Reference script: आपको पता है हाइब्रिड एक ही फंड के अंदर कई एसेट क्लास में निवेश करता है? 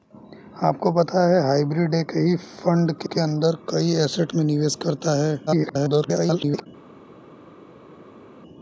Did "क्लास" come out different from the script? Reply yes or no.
yes